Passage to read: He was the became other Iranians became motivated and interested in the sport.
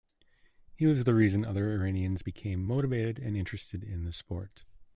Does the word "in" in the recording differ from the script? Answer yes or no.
no